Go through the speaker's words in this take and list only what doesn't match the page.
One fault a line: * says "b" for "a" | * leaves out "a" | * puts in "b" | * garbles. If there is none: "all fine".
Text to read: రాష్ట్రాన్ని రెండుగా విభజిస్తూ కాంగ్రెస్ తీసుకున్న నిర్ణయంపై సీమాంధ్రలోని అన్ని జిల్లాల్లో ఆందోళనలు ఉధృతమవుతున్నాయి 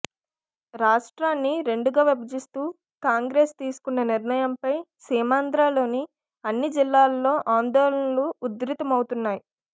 all fine